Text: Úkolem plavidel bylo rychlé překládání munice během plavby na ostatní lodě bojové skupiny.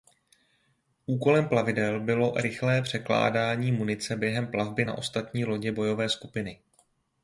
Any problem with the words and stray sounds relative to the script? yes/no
no